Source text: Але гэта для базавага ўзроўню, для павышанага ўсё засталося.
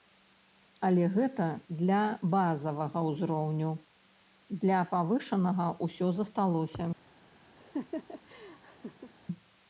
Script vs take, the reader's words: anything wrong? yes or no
no